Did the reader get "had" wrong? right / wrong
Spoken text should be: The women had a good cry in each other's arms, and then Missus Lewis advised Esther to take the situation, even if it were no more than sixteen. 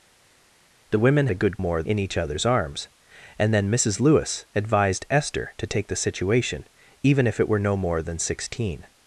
wrong